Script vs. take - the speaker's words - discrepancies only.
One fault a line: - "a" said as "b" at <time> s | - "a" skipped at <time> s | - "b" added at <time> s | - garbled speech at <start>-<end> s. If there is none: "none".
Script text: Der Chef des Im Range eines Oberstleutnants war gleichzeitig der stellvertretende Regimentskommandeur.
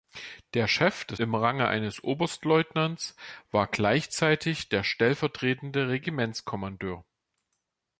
none